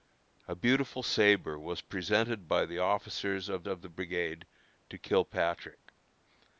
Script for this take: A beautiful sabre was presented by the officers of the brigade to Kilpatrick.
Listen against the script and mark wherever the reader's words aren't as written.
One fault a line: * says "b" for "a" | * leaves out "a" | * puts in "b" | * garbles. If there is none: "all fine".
* puts in "of"